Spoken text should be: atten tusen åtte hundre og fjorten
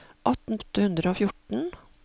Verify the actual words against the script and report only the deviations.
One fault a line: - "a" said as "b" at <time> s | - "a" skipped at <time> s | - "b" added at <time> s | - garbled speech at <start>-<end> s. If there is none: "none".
- "tusen" skipped at 0.6 s